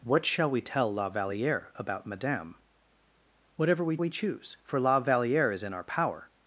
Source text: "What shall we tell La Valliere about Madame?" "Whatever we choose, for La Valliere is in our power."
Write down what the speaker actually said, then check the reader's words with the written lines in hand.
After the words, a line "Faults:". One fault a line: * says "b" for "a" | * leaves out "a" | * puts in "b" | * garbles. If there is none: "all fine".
"What shall we tell La Valliere about Madame?" "Whatever we we choose, for La Valliere is in our power."
Faults:
* puts in "we"